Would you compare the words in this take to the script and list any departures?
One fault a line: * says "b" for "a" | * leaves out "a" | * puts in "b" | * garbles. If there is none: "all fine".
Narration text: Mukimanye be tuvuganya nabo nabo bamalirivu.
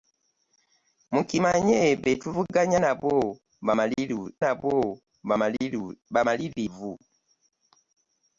all fine